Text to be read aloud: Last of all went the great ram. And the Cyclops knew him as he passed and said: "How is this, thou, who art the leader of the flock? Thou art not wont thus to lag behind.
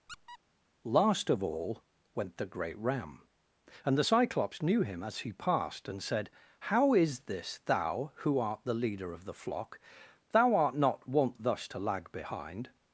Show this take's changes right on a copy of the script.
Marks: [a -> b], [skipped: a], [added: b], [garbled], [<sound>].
[squeak] Last of all went the great ram. And the Cyclops knew him as he passed and said: "How is this, thou, who art the leader of the flock? Thou art not wont thus to lag behind.